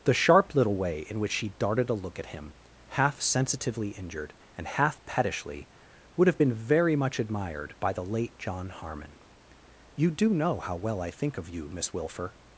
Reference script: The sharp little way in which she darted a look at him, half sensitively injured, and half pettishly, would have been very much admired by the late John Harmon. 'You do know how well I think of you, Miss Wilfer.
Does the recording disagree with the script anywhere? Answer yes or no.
no